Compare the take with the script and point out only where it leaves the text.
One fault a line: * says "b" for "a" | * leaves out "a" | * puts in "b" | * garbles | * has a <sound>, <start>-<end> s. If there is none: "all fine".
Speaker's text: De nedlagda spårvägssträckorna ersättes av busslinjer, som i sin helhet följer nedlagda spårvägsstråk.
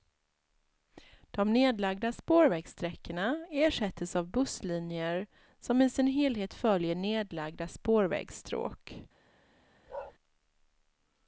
* has a bark, 9.9-10.1 s